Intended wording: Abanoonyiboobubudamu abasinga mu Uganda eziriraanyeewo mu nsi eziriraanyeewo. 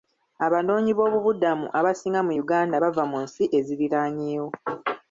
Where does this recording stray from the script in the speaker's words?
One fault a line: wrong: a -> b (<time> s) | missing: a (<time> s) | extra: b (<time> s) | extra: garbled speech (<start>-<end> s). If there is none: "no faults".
wrong: eziriraanyeewo -> bava (2.8 s)